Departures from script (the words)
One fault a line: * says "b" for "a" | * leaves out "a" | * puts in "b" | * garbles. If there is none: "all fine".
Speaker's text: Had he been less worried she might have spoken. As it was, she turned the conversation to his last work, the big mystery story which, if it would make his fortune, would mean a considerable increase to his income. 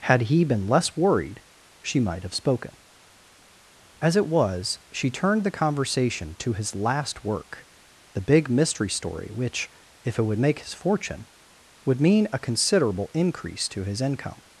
all fine